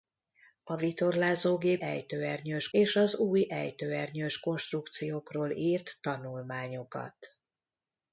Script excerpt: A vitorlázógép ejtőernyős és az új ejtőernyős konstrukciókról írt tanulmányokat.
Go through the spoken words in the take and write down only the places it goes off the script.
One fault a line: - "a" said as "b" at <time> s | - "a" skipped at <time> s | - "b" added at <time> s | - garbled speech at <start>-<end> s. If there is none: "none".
none